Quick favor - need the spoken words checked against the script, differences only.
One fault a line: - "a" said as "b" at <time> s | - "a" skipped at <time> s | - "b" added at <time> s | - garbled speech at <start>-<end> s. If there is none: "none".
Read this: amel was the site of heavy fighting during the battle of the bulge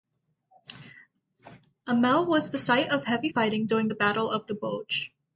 none